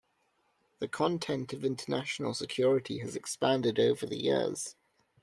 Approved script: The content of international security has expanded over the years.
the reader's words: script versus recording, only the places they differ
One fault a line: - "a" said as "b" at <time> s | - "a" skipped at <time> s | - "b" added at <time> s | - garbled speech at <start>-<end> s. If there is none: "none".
none